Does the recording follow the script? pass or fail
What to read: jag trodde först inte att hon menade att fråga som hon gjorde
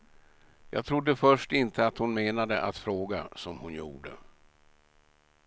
pass